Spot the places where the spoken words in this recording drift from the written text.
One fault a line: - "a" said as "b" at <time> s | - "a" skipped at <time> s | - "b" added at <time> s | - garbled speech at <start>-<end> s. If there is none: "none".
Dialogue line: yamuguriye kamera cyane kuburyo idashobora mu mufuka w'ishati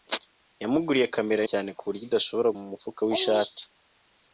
none